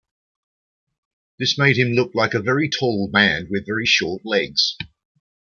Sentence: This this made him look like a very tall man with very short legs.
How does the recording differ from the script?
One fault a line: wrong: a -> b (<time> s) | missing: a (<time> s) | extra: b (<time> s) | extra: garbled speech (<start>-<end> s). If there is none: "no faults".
missing: this (1.6 s)